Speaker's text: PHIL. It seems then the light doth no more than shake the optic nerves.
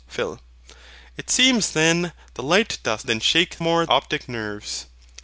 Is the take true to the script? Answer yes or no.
no